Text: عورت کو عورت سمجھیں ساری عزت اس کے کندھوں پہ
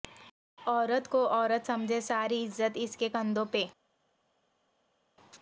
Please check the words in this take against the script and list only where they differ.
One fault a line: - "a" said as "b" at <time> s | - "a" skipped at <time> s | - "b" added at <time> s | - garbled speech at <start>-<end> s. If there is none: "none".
none